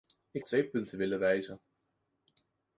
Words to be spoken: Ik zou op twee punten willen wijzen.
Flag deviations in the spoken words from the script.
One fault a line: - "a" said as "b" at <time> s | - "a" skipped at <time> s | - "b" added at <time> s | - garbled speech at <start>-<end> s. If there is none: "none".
- "zou" skipped at 0.5 s